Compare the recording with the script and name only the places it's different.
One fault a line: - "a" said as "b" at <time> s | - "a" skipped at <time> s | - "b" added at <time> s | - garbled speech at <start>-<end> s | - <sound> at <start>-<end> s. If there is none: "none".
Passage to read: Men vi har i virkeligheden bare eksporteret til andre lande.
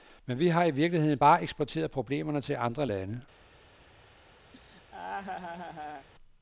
- "problemerne" added at 1.9 s
- laugh at 4.5-6.1 s